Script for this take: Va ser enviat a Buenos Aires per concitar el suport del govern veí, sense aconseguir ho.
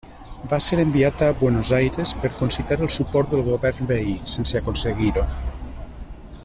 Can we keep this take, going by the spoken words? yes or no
yes